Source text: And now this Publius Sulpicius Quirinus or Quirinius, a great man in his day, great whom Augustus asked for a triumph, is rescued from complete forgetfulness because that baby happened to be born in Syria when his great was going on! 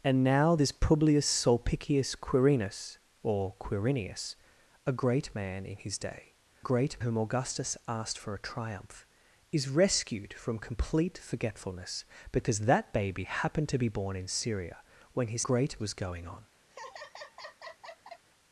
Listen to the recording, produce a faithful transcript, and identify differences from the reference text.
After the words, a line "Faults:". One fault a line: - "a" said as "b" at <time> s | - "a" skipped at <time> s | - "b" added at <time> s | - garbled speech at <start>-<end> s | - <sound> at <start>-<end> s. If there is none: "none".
And now this Publius Sulpicius Quirinus or Quirinius, a great man in his day, great whom Augustus asked for a triumph, is rescued from complete forgetfulness because that baby happened to be born in Syria when his great was going on!
Faults:
- laugh at 16.7-18.3 s